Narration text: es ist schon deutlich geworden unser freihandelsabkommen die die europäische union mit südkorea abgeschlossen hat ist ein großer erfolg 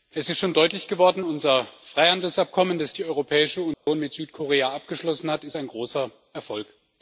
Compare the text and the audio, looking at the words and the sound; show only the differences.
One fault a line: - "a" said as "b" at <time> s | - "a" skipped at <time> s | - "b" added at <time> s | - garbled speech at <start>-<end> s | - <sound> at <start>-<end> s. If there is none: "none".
- "die" said as "das" at 2.8 s
- dropout at 3.7-3.9 s